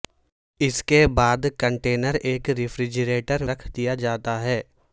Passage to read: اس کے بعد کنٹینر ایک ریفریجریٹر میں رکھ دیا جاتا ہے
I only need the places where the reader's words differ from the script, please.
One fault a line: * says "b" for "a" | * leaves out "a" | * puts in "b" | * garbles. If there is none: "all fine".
* leaves out "میں"